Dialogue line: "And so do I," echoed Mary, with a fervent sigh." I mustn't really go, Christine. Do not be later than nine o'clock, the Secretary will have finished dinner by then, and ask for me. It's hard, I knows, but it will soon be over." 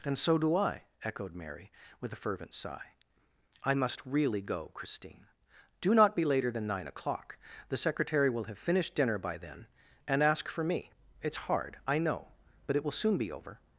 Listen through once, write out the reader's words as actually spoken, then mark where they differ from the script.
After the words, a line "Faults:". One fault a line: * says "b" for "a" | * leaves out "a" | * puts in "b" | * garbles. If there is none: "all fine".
"And so do I," echoed Mary, with a fervent sigh." I must really go, Christine. Do not be later than nine o'clock, the Secretary will have finished dinner by then, and ask for me. It's hard, I know, but it will soon be over."
Faults:
* says "must" for "mustn't"
* says "know" for "knows"